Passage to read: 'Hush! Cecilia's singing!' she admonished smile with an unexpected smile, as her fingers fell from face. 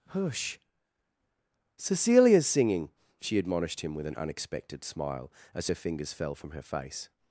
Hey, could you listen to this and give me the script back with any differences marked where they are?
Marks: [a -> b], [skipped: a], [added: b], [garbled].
'Hush! Cecilia's singing!' she admonished [smile -> him] with an unexpected smile, as her fingers fell from [added: her] face.